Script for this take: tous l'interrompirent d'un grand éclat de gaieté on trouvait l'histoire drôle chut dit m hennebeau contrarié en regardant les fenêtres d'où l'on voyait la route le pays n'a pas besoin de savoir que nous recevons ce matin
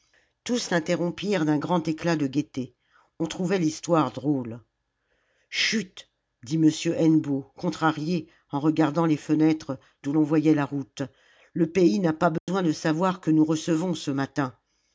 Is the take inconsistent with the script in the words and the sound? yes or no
yes